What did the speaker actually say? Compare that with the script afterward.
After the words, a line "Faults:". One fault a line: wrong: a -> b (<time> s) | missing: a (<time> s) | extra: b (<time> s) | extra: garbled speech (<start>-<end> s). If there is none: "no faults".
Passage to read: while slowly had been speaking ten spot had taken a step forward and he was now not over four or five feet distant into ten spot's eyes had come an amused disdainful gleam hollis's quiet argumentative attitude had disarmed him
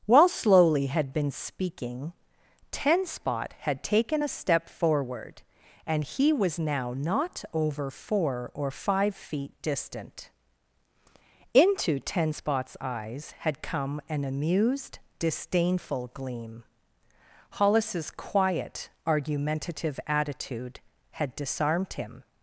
while slowly had been speaking ten spot had taken a step forward and he was now not over four or five feet distant into ten spot's eyes had come an amused disdainful gleam hollis's quiet argumentative attitude had disarmed him
Faults:
no faults